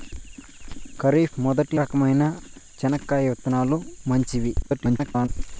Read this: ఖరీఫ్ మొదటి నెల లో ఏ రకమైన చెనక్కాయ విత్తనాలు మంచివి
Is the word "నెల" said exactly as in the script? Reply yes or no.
no